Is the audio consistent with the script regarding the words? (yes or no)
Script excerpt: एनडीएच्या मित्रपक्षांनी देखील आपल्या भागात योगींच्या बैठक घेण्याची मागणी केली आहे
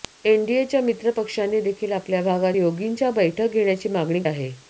no